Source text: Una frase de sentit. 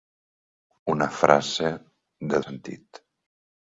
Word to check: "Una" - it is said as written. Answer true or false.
true